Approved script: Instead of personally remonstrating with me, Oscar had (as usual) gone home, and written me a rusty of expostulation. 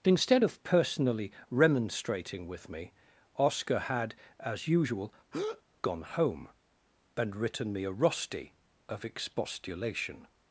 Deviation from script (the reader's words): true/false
false